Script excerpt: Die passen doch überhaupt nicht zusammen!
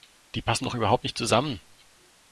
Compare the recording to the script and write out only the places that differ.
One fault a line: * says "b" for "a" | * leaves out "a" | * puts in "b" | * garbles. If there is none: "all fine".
all fine